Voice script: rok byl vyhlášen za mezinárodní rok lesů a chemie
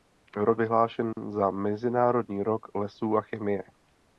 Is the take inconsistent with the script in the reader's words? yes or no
yes